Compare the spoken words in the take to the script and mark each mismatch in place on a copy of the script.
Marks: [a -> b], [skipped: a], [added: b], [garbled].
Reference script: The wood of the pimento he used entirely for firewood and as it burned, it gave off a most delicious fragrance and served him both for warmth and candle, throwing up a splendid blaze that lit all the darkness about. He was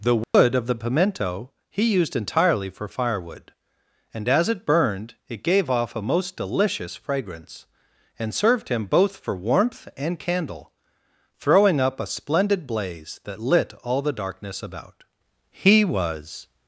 The wood of the pimento he used entirely for firewood and as it burned, it gave off a most delicious fragrance and served him both for warmth and candle, throwing up a splendid blaze that lit all the darkness about. He was